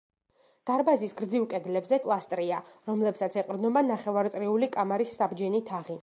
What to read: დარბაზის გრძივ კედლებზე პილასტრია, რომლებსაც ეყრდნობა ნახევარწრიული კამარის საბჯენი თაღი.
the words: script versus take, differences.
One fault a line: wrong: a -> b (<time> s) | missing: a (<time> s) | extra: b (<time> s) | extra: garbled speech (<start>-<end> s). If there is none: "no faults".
no faults